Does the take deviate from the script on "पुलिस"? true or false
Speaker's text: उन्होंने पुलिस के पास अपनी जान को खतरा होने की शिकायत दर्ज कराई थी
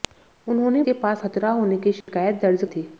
true